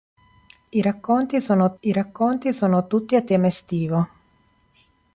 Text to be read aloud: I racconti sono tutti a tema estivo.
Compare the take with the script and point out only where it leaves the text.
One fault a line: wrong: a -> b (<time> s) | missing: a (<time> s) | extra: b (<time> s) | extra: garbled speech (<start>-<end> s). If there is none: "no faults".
extra: I racconti sono (1.8 s)